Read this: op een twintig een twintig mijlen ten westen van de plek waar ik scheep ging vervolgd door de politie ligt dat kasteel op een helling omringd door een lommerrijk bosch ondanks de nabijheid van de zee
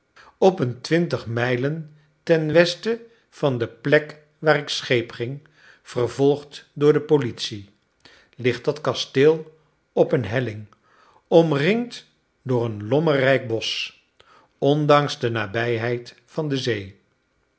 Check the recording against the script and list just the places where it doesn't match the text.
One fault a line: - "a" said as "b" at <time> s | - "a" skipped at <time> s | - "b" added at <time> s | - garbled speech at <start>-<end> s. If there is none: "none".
- "een twintig" skipped at 1.2 s